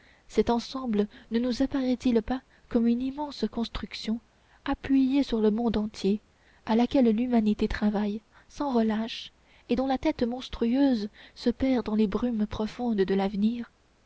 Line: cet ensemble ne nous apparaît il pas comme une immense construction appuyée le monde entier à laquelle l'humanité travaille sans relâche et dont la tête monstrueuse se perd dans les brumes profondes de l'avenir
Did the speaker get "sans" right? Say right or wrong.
right